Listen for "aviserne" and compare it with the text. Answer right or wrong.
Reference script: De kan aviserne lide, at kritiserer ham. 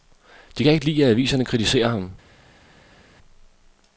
wrong